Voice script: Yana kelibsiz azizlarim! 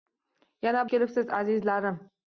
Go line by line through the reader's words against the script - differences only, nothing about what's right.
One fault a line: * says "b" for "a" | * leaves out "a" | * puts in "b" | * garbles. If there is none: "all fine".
all fine